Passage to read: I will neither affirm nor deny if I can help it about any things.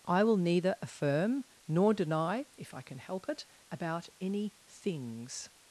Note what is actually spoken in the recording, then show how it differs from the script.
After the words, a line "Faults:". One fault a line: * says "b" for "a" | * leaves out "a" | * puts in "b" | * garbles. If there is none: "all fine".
I will neither affirm nor deny if I can help it about any things.
Faults:
all fine